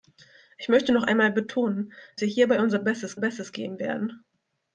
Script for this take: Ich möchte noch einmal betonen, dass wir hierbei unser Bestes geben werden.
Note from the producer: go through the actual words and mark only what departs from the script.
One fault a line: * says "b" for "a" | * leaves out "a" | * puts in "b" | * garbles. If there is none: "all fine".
* leaves out "dass"
* puts in "Bestes"